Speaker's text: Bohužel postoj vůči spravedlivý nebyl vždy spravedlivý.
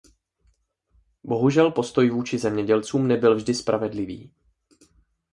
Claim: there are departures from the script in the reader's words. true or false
true